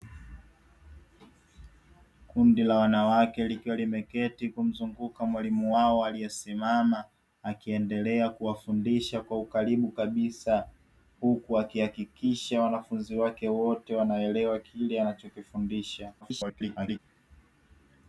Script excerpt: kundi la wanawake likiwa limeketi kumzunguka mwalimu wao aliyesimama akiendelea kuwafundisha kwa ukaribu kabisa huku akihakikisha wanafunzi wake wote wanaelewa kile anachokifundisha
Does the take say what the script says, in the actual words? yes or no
no